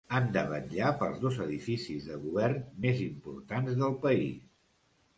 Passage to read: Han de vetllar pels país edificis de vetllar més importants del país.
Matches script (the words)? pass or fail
fail